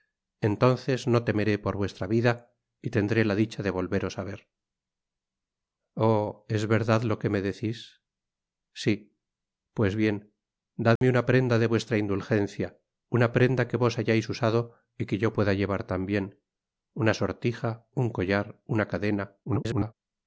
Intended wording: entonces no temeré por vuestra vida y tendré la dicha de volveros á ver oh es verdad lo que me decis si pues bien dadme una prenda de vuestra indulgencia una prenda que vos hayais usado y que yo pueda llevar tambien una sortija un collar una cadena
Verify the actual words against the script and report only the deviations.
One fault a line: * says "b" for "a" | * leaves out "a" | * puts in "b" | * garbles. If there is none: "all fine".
* garbles